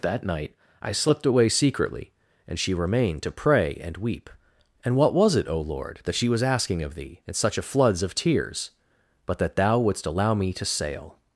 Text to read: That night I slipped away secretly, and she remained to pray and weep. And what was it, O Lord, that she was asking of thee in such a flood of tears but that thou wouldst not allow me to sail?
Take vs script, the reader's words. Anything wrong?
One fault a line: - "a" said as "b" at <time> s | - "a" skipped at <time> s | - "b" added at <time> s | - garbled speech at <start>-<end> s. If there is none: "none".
- "flood" said as "floods" at 7.6 s
- "not" skipped at 10.1 s